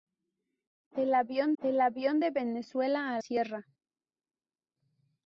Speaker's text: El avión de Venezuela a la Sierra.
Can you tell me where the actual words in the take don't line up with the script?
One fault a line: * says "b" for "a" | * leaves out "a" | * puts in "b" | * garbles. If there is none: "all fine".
* puts in "el avión"
* leaves out "la"